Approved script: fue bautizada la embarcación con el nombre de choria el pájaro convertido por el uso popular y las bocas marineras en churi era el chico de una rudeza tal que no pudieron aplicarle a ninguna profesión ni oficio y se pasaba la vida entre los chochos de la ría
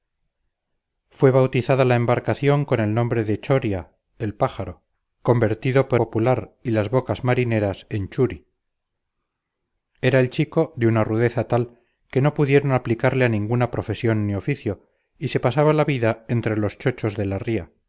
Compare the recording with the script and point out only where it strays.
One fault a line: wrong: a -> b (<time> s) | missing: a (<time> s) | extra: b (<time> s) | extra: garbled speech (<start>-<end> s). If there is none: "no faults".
missing: el uso (6.0 s)